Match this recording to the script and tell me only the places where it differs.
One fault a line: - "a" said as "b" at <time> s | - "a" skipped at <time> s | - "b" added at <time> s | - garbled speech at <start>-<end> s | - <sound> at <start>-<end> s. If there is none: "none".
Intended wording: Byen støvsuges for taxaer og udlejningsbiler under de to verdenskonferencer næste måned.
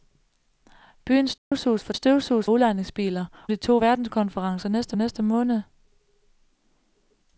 - dropout at 1.4-1.5 s
- "taxaer" said as "støvsuges" at 1.9 s
- "under" skipped at 3.2 s
- "næste" added at 4.9 s